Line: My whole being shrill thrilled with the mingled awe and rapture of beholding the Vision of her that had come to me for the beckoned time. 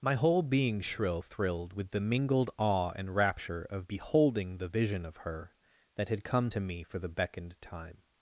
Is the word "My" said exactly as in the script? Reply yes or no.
yes